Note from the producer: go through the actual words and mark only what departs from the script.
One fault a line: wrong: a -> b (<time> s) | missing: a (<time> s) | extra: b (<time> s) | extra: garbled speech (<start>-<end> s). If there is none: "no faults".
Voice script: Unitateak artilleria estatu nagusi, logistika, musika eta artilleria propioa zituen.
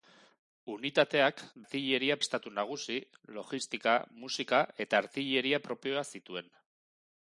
no faults